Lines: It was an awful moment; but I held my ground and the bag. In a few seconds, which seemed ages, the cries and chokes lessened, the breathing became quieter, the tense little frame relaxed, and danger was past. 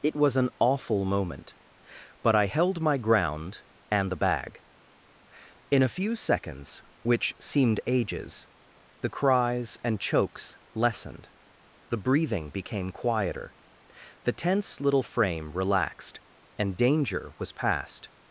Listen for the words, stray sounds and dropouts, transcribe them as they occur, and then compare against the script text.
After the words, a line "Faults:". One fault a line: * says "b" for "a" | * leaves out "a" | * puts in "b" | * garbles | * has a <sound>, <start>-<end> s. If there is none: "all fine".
It was an awful moment; but I held my ground and the bag. In a few seconds, which seemed ages, the cries and chokes lessened, the breathing became quieter, the tense little frame relaxed, and danger was past.
Faults:
all fine